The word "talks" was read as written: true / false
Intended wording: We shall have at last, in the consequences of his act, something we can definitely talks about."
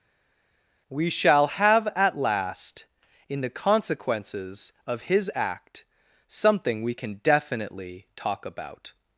false